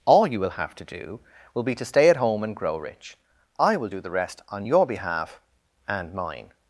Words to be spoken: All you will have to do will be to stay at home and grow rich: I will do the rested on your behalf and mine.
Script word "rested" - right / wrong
wrong